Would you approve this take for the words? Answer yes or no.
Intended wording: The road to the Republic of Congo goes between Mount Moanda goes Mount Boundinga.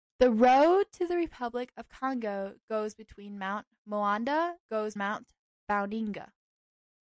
yes